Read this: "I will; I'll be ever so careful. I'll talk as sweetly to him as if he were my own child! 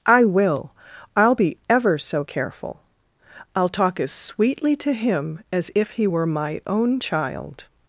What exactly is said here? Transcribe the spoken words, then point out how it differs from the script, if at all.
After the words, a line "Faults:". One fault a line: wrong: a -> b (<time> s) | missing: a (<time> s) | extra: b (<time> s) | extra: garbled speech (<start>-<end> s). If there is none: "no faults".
"I will; I'll be ever so careful. I'll talk as sweetly to him as if he were my own child!
Faults:
no faults